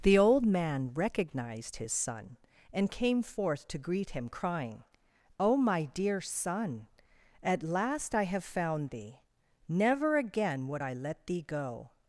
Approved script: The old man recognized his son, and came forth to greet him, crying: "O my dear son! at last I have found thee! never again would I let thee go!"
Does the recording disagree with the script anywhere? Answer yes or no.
no